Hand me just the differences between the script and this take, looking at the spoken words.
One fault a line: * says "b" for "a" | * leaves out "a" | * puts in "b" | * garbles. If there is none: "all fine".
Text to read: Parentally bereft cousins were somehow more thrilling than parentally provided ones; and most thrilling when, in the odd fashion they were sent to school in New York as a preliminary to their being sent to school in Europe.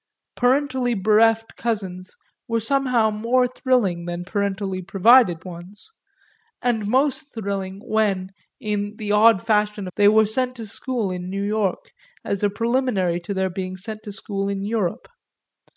all fine